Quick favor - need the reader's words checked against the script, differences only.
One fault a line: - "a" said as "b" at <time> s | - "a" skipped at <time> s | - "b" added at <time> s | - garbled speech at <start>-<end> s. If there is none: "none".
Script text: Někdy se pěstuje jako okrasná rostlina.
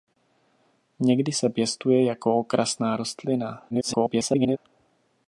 - garbled speech at 3.7-4.6 s